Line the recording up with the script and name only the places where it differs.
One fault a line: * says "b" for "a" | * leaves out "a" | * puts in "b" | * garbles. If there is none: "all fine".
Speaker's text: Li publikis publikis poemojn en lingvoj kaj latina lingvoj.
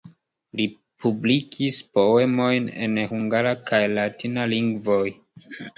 * leaves out "publikis"
* says "hungara" for "lingvoj"